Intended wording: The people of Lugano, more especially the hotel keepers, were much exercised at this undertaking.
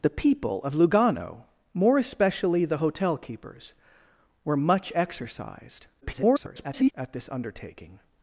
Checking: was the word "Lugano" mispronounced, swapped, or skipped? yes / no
no